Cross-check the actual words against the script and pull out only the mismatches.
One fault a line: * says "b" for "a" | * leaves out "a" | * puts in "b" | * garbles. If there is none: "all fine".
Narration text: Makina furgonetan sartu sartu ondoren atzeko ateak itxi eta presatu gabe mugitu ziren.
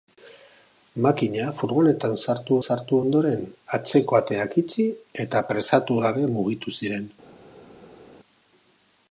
all fine